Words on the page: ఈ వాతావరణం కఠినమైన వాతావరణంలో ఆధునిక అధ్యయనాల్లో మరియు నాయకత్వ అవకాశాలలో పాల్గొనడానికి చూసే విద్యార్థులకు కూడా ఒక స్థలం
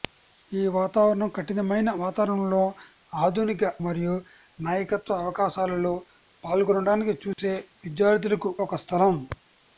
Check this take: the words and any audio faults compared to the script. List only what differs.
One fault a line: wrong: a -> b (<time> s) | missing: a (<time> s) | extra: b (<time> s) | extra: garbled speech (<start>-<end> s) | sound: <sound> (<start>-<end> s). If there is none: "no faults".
missing: అధ్యయనాల్లో (3.6 s)
sound: dropout (7.3-7.4 s)
missing: కూడా (8.5 s)